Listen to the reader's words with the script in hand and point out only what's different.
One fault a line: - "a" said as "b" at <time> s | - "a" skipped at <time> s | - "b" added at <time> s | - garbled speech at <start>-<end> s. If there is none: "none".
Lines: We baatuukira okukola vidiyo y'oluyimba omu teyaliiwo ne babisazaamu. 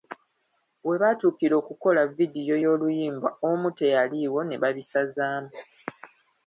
none